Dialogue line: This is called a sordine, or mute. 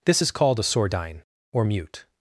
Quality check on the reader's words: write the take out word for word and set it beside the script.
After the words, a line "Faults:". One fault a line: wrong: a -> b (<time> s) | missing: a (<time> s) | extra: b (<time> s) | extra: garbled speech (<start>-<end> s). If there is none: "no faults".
This is called a sordine, or mute.
Faults:
no faults